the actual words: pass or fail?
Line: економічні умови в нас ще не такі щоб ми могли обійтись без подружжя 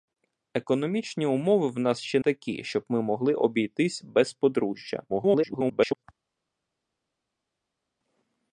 fail